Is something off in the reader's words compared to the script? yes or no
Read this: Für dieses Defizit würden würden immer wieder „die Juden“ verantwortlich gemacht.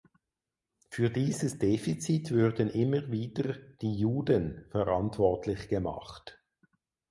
yes